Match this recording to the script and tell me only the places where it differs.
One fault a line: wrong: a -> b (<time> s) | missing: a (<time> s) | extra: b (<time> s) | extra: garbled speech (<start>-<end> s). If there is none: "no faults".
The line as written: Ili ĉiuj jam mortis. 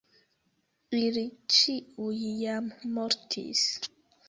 no faults